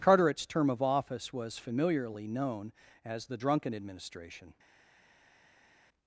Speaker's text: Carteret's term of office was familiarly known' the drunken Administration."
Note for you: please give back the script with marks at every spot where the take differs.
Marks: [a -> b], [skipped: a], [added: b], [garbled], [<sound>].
Carteret's term of office was familiarly known' [added: as] the drunken Administration."